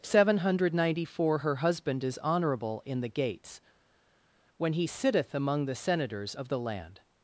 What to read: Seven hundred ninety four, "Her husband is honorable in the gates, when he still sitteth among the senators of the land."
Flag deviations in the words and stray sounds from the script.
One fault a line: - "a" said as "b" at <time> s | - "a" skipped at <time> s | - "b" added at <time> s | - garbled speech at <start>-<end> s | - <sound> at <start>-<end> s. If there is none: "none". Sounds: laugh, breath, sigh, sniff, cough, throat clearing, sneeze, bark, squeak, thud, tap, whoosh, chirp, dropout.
- "still" skipped at 4.8 s